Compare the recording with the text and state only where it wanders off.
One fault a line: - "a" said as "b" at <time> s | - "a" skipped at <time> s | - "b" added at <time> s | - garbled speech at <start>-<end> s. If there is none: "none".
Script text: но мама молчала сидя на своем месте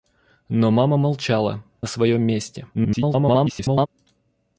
- "сидя" skipped at 1.6 s
- garbled speech at 2.7-3.9 s